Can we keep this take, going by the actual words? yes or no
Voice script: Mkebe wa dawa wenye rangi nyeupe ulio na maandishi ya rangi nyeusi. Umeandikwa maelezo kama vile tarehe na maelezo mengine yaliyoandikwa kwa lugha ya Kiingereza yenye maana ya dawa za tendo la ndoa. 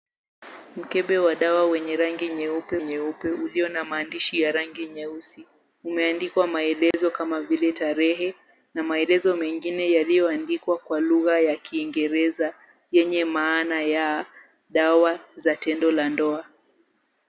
no